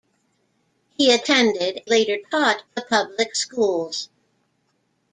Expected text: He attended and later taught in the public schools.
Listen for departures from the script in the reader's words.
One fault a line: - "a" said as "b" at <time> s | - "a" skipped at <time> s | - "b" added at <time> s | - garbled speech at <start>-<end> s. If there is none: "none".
- "and" skipped at 1.8 s
- "in" skipped at 2.6 s